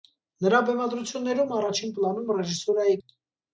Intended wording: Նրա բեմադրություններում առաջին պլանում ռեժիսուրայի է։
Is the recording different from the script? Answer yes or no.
no